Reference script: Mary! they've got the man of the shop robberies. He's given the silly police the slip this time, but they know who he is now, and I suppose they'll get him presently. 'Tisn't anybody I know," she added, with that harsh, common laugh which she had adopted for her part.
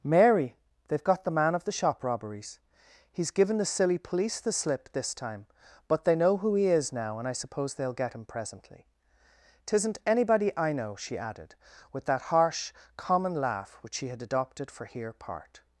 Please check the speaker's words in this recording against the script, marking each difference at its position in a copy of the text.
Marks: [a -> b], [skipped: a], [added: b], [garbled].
Mary! they've got the man of the shop robberies. He's given the silly police the slip this time, but they know who he is now, and I suppose they'll get him presently. 'Tisn't anybody I know," she added, with that harsh, common laugh which she had adopted for [her -> here] part.